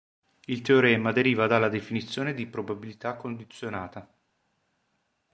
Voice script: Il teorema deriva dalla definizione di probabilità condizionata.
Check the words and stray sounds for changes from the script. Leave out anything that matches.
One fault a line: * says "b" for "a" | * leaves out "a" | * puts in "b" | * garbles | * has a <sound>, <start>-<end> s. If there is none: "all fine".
all fine